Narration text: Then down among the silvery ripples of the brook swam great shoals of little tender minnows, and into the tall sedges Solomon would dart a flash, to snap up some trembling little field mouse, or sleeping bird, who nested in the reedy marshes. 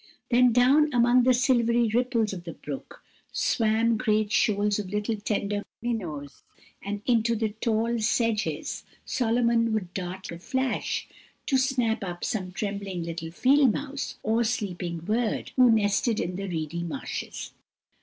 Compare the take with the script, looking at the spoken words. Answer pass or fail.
pass